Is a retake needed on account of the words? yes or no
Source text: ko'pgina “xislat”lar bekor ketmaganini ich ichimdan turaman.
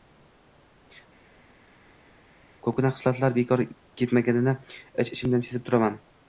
yes